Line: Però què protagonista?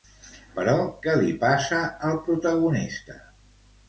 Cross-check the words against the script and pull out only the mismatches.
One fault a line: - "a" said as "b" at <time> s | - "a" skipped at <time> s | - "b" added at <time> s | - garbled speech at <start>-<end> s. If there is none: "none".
- "li passa al" added at 1.2 s